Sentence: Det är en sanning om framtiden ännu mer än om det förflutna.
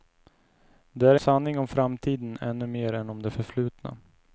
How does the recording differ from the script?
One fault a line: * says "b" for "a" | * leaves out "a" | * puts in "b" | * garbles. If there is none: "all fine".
* leaves out "en"